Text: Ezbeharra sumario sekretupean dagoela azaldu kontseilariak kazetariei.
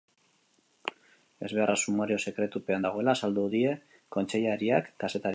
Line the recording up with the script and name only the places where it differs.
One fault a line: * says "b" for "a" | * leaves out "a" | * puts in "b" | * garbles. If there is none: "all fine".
* puts in "die"